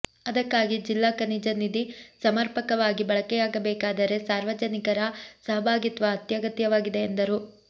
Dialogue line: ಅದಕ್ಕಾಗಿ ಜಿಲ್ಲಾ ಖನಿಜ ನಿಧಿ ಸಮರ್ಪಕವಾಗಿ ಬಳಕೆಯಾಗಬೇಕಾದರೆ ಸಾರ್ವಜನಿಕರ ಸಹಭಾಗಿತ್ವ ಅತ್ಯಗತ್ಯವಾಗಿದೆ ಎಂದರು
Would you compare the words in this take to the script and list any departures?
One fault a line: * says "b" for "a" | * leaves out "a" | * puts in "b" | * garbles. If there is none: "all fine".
all fine